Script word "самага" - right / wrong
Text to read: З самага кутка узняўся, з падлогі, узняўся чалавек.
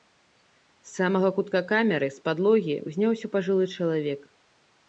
right